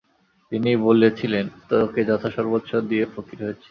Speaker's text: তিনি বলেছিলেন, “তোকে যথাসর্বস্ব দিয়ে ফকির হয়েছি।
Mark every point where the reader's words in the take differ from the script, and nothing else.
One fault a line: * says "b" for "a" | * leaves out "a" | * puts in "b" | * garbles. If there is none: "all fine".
all fine